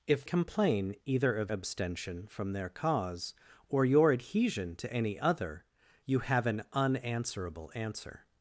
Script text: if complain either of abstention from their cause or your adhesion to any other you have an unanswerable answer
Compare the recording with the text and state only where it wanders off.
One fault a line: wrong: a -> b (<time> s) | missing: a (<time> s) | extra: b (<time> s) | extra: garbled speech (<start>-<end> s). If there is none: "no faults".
no faults